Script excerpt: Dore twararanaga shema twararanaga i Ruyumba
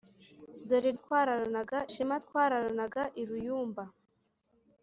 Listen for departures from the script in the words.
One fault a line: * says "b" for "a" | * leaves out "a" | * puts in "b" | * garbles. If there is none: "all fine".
all fine